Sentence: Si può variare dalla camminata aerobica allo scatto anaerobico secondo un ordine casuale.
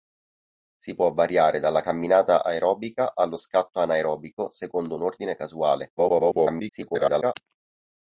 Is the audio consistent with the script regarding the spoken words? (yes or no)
no